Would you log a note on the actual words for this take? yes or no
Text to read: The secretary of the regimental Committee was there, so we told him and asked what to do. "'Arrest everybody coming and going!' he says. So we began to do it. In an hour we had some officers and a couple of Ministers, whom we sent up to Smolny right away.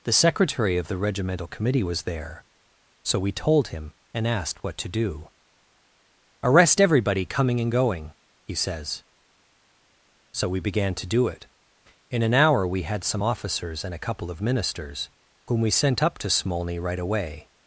no